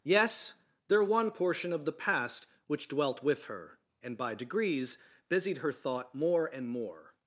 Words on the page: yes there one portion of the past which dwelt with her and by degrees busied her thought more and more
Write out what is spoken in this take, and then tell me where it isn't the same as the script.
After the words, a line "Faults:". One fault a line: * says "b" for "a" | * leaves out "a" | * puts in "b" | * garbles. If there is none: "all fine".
yes there one portion of the past which dwelt with her and by degrees busied her thought more and more
Faults:
all fine